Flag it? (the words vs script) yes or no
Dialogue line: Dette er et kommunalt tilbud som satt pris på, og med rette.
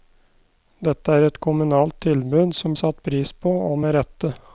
no